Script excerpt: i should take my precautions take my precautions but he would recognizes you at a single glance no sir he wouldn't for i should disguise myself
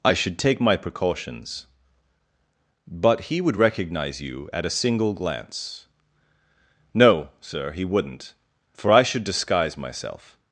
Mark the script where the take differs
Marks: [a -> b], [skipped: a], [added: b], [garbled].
i should take my precautions [skipped: take my precautions] but he would [recognizes -> recognize] you at a single glance no sir he wouldn't for i should disguise myself